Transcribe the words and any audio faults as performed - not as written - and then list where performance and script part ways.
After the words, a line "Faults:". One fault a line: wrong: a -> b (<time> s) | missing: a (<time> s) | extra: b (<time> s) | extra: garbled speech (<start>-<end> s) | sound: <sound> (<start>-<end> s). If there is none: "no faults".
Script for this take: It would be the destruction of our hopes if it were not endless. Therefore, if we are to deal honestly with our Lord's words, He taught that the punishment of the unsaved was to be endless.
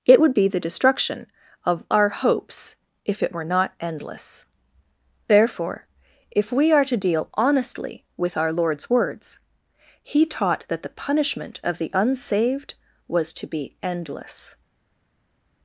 It would be the destruction of our hopes if it were not endless. Therefore, if we are to deal honestly with our Lord's words, He taught that the punishment of the unsaved was to be endless.
Faults:
no faults